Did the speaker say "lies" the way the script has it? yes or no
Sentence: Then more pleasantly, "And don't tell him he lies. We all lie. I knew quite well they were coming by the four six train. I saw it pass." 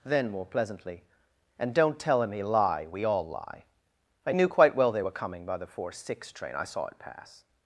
no